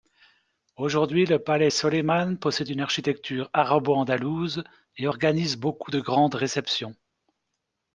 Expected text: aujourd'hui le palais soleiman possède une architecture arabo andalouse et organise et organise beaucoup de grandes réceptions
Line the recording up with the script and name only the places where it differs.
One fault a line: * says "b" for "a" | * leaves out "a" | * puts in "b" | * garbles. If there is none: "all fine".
* leaves out "et organise"